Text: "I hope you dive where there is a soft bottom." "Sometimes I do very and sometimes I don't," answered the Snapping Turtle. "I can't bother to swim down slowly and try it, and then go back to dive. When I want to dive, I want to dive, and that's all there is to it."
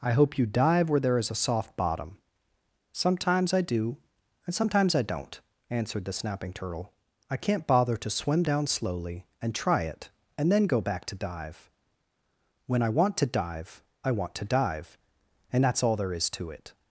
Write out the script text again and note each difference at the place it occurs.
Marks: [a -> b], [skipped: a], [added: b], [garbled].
"I hope you dive where there is a soft bottom." "Sometimes I do [skipped: very] and sometimes I don't," answered the Snapping Turtle. "I can't bother to swim down slowly and try it, and then go back to dive. When I want to dive, I want to dive, and that's all there is to it."